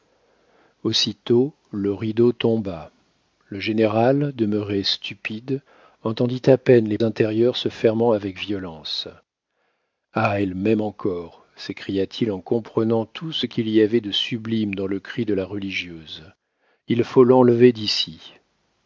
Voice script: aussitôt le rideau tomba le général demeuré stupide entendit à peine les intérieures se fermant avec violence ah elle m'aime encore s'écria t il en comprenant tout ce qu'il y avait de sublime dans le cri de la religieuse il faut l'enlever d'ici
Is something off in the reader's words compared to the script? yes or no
no